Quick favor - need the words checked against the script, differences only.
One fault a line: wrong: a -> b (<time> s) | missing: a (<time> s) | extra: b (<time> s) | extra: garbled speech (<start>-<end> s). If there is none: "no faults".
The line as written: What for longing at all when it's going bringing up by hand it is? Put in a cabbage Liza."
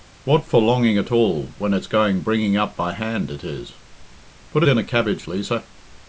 no faults